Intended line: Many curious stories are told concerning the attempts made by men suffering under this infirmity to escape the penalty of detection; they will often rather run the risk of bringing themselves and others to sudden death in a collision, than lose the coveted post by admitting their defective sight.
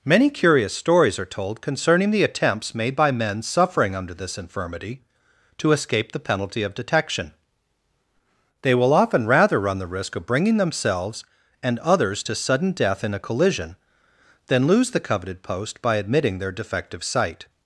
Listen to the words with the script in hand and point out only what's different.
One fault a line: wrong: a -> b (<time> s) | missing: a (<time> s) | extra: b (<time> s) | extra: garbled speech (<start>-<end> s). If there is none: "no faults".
no faults